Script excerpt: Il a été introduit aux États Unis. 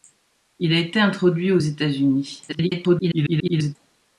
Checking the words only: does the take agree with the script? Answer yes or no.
no